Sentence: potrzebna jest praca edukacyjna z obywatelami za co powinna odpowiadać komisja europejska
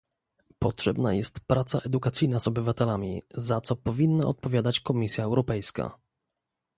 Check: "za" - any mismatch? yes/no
no